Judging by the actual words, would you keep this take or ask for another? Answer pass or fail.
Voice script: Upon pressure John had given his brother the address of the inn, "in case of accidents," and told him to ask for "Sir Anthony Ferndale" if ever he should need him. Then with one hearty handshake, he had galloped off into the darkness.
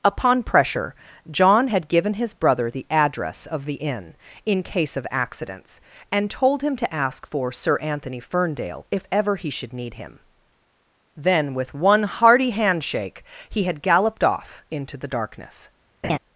pass